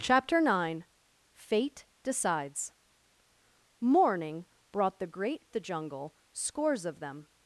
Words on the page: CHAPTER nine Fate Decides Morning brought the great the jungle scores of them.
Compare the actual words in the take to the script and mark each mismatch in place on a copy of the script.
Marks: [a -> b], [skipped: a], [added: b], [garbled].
CHAPTER nine Fate Decides Morning brought the great the jungle scores of them.